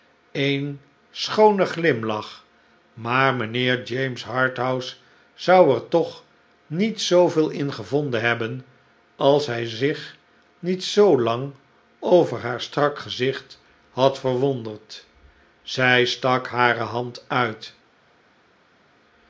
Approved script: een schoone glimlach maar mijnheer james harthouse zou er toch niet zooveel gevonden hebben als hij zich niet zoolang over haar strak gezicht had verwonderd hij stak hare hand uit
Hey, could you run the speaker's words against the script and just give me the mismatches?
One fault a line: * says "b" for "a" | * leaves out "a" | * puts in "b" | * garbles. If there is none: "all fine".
* puts in "in"
* says "zij" for "hij"